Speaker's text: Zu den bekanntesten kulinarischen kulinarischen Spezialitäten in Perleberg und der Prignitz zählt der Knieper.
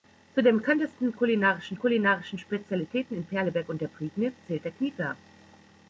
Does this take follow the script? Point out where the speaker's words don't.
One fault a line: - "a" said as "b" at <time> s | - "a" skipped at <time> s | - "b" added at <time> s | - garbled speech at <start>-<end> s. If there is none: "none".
none